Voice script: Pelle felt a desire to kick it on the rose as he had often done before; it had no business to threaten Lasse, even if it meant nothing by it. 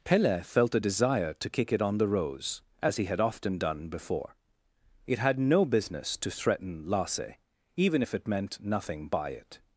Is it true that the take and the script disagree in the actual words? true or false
false